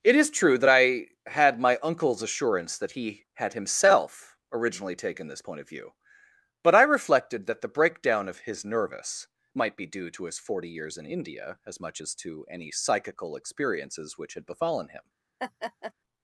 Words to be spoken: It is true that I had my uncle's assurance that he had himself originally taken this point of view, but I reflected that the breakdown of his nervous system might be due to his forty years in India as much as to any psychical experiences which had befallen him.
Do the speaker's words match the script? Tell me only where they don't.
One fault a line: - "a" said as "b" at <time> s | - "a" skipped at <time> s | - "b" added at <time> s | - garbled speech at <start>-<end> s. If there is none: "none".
- "system" skipped at 9.3 s